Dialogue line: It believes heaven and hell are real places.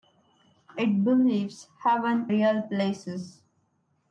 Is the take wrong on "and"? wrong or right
wrong